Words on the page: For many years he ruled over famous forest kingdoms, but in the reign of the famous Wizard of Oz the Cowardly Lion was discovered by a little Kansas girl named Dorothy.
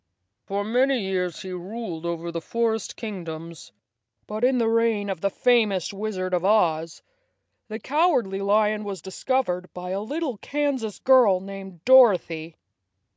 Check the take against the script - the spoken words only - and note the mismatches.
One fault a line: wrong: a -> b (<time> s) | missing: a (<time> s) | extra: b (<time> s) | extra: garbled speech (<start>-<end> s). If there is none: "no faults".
wrong: famous -> the (2.3 s)